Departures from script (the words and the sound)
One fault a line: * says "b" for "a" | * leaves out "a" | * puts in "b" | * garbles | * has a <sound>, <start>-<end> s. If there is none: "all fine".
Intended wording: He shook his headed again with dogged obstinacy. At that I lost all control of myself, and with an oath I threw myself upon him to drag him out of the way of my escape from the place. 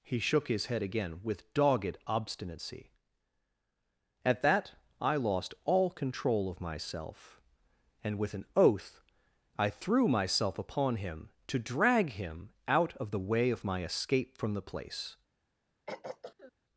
* says "head" for "headed"
* has a throat clearing, 15.9-16.5 s